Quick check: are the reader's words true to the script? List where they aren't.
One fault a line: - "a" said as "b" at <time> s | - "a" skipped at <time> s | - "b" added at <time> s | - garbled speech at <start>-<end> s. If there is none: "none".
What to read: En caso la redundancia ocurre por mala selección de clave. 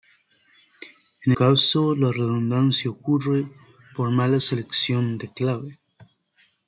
none